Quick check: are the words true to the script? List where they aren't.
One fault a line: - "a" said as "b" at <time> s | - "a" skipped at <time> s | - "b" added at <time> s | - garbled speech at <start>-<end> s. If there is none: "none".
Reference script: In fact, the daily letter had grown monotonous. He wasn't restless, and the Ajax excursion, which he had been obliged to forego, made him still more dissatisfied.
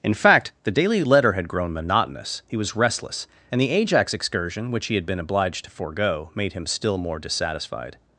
- "wasn't" said as "was" at 2.6 s